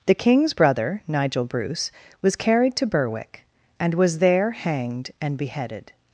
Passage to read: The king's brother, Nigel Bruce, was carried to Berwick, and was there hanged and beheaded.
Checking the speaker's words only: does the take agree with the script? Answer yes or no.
yes